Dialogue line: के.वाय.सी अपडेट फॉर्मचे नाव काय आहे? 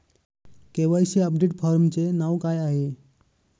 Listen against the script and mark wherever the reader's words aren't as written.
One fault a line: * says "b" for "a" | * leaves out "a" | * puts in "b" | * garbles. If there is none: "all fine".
all fine